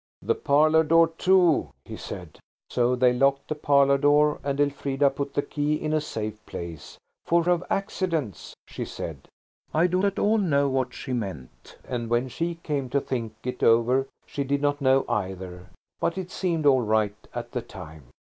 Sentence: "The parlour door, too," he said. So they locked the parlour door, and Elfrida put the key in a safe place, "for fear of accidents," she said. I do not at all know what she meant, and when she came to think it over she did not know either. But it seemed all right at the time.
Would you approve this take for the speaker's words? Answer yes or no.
no